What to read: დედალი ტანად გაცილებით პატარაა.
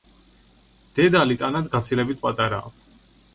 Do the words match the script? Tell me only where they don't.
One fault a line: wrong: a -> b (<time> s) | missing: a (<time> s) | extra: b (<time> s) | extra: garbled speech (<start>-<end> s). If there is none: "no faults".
no faults